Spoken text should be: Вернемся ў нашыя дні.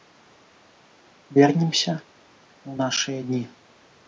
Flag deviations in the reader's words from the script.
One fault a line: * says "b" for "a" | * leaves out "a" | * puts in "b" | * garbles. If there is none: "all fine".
all fine